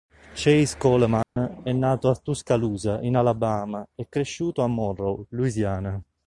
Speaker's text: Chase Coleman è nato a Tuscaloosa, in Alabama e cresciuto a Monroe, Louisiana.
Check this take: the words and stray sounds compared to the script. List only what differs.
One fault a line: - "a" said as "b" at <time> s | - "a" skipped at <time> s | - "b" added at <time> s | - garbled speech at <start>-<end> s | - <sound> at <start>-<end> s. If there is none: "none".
- dropout at 1.2-1.4 s